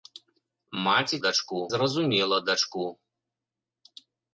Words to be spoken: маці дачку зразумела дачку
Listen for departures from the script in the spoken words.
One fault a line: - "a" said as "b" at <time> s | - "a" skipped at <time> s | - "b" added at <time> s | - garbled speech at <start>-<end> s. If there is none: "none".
none